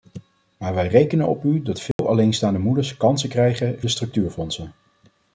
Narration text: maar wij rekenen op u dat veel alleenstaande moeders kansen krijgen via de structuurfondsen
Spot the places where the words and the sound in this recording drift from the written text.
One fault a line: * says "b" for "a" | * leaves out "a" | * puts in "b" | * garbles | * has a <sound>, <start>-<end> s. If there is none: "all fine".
* has a dropout, 1.9-2.0 s
* leaves out "via"